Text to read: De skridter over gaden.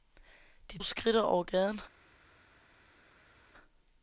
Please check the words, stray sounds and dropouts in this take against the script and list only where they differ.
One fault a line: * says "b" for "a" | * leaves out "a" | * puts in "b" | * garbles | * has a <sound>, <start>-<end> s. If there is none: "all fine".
all fine